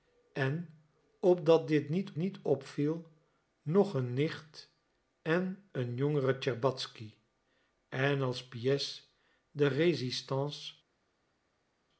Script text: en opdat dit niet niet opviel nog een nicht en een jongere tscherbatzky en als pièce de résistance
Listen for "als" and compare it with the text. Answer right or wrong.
right